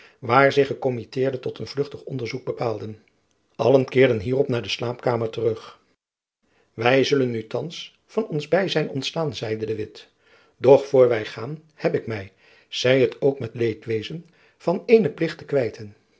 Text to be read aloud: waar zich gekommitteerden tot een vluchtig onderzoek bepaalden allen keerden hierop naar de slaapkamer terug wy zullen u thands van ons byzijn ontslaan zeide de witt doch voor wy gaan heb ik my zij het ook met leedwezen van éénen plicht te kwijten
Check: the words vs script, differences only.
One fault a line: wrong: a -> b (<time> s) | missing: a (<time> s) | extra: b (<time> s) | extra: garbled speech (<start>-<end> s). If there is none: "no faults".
no faults